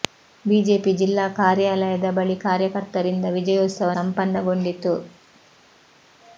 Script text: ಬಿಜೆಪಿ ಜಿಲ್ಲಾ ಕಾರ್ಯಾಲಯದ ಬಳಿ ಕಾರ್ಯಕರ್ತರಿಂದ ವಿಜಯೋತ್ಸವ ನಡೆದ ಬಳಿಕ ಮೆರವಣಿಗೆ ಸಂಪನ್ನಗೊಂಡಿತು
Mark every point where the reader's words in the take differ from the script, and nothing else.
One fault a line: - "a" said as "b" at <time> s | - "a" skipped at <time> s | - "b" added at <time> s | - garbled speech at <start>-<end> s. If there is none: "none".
- "ನಡೆದ ಬಳಿಕ ಮೆರವಣಿಗೆ" skipped at 3.9 s